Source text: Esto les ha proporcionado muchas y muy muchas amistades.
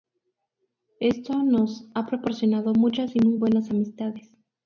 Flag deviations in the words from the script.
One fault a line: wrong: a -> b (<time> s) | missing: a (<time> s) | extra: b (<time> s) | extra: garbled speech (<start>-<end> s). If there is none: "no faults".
wrong: les -> nos (1.4 s)
wrong: muchas -> buenas (3.4 s)